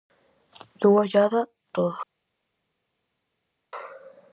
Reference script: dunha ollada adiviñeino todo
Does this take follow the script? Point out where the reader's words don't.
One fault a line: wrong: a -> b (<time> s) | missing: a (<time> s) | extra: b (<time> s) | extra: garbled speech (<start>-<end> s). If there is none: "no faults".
missing: adiviñeino (1.4 s)